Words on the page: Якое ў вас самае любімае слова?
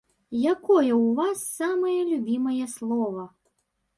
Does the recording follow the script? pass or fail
pass